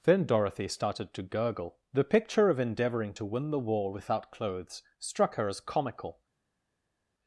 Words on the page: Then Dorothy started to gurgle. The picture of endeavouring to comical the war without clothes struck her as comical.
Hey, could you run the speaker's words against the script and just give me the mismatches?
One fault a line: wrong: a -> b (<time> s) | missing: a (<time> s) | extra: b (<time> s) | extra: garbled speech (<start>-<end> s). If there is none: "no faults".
wrong: comical -> win (3.3 s)